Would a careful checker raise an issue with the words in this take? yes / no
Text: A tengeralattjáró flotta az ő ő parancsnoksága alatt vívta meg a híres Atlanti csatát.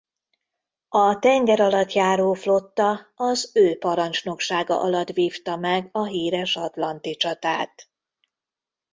yes